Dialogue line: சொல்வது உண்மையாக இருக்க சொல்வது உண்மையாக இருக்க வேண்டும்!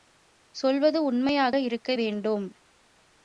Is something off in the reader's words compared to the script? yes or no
yes